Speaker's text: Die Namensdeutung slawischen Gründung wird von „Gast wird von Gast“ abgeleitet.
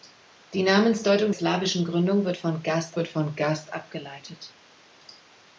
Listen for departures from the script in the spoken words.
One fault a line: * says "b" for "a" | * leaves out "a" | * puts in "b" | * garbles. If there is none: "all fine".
all fine